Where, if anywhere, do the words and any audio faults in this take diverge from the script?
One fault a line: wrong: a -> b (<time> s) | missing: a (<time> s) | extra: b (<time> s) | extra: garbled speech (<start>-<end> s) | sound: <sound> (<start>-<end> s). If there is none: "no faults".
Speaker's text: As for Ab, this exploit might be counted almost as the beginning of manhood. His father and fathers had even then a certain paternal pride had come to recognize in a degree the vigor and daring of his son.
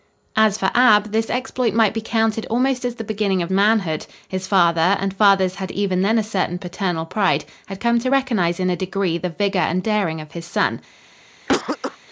sound: cough (11.5-12.0 s)